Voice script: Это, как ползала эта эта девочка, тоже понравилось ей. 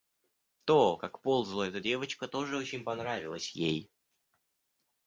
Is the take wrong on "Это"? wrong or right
wrong